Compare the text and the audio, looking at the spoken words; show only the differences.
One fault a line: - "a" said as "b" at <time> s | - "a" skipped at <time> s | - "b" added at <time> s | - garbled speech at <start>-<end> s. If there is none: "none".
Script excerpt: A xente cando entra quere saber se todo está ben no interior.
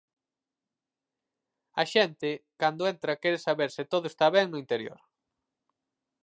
none